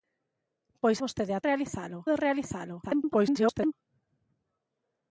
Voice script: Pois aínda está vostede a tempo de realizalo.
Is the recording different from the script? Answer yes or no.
yes